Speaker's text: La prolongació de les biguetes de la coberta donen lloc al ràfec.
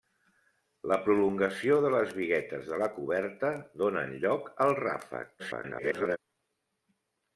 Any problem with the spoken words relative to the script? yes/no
yes